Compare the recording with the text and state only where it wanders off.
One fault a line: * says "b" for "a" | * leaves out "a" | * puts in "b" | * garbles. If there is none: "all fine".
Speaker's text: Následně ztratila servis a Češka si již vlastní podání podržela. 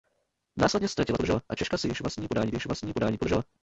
* says "podržela" for "servis"
* puts in "již vlastní podání"